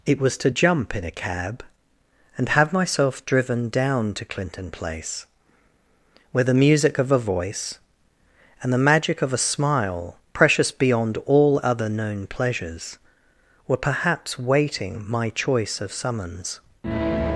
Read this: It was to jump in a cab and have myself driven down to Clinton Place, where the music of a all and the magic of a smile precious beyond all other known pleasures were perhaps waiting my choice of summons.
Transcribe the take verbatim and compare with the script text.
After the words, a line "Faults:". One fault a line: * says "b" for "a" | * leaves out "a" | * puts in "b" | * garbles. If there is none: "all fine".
It was to jump in a cab and have myself driven down to Clinton Place, where the music of a voice and the magic of a smile precious beyond all other known pleasures were perhaps waiting my choice of summons.
Faults:
* says "voice" for "all"